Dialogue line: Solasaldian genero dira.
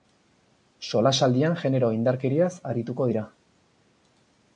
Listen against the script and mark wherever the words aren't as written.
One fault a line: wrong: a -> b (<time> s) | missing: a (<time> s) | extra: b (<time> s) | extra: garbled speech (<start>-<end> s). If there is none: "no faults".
extra: indarkeriaz arituko (2.0 s)